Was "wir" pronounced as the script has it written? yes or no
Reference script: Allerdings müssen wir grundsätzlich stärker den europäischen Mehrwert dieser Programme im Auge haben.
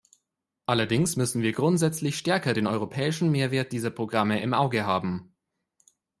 yes